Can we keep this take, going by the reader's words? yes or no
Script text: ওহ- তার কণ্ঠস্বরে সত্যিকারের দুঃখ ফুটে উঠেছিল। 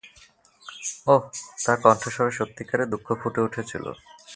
yes